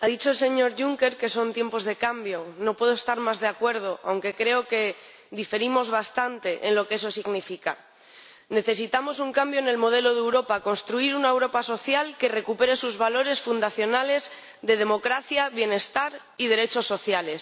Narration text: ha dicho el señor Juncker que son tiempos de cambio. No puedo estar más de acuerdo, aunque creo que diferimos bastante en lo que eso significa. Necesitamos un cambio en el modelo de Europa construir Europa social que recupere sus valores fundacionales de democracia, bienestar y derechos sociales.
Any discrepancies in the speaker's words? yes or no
yes